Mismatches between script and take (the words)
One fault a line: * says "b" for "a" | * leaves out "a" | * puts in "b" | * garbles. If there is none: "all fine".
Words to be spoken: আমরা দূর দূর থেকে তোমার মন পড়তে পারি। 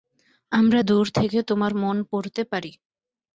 * leaves out "দূর"